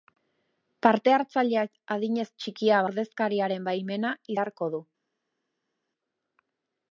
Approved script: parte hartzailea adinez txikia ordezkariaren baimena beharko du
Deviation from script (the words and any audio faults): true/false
false